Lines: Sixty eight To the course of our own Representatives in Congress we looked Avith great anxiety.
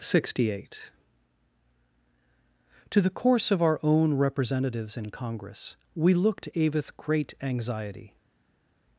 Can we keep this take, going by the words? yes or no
yes